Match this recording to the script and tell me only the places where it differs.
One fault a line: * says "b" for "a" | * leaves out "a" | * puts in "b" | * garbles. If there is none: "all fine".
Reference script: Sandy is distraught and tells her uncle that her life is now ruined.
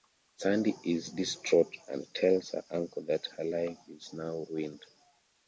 all fine